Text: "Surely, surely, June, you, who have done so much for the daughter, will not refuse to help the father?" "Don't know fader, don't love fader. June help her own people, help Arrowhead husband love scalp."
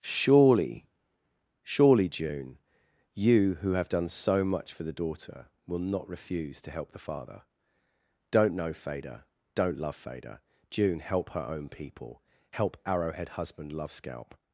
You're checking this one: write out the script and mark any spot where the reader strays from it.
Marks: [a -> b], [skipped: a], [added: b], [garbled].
"Surely, surely, June, you, who have done so much for the daughter, will not refuse to help the father?" "Don't know fader, don't love fader. June help her own people, help Arrowhead husband love scalp."